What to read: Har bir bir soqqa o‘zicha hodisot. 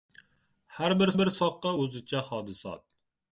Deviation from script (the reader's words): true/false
false